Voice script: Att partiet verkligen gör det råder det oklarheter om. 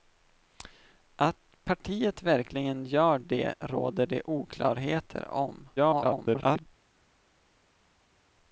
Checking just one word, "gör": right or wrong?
right